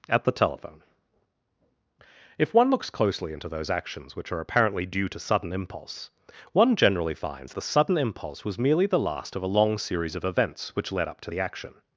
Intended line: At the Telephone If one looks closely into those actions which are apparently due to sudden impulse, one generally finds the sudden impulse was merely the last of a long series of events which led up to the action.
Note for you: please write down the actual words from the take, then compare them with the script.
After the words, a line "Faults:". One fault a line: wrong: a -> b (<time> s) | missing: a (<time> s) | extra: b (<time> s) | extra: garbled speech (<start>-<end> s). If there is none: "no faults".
At the Telephone If one looks closely into those actions which are apparently due to sudden impulse, one generally finds the sudden impulse was merely the last of a long series of events which led up to the action.
Faults:
no faults